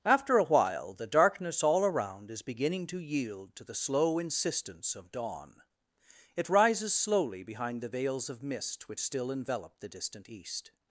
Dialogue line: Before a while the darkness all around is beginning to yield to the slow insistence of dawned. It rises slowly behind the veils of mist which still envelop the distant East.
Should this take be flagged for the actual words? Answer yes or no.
yes